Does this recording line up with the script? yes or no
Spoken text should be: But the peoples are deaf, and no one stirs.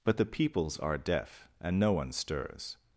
yes